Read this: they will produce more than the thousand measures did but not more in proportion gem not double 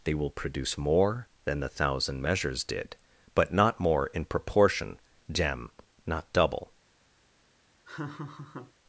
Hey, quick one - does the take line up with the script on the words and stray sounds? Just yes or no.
no